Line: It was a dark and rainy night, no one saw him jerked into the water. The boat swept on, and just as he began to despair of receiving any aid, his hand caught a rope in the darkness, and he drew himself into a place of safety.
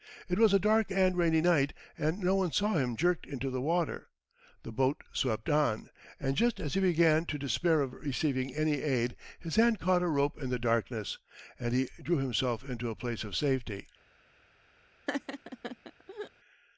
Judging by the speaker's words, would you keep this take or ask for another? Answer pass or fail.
fail